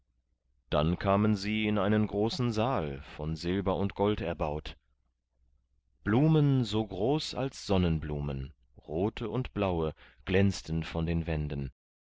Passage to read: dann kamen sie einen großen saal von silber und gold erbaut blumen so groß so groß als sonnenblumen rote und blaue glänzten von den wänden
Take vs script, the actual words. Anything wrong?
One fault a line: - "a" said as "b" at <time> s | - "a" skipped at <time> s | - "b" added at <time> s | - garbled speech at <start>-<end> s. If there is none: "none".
- "in" added at 1.7 s
- "so groß" skipped at 7.4 s